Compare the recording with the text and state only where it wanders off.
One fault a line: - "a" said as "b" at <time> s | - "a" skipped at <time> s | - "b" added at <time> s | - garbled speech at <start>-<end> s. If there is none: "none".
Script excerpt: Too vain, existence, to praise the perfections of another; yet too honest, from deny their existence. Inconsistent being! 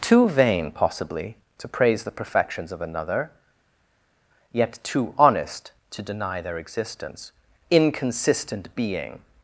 - "existence" said as "possibly" at 0.7 s
- "from" said as "to" at 5.9 s